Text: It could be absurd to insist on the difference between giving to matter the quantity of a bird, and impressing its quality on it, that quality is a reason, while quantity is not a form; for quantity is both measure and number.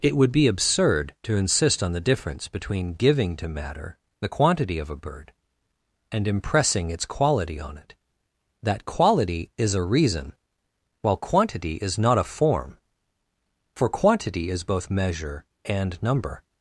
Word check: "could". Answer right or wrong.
wrong